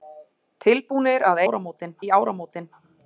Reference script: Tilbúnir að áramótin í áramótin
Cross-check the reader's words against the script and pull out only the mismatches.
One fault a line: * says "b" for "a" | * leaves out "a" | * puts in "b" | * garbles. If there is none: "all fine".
all fine